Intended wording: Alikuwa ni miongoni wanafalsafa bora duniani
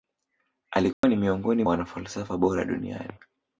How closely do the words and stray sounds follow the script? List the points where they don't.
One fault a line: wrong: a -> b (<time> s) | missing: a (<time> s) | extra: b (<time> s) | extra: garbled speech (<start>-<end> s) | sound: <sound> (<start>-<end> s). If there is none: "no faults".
sound: dropout (0.9-1.0 s)